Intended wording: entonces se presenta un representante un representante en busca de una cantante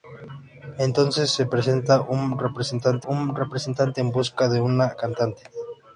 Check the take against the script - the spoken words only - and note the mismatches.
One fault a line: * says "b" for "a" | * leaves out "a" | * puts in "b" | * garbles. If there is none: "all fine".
all fine